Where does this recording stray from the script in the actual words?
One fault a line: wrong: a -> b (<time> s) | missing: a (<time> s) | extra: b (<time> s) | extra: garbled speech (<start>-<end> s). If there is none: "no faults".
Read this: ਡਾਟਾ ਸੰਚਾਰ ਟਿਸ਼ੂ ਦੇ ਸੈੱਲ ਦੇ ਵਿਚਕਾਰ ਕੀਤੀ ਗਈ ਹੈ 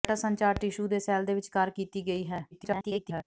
extra: garbled speech (2.5-3.2 s)